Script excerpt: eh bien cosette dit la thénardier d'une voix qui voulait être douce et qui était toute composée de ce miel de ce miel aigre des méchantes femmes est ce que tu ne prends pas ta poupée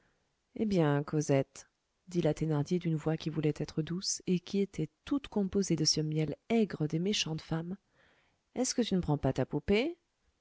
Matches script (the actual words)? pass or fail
fail